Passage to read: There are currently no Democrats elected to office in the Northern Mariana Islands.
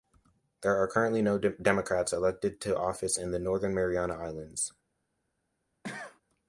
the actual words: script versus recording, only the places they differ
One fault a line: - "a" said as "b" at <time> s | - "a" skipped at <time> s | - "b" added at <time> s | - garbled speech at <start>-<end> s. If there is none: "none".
none